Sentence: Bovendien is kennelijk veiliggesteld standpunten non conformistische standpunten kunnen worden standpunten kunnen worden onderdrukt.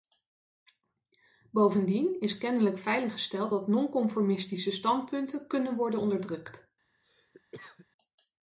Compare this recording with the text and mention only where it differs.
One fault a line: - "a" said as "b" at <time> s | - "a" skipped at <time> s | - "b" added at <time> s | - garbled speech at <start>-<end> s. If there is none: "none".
- "standpunten" said as "dat" at 3.5 s
- "standpunten kunnen worden" skipped at 6.0 s